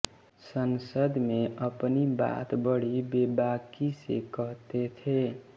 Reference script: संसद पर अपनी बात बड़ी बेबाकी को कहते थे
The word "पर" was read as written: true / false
false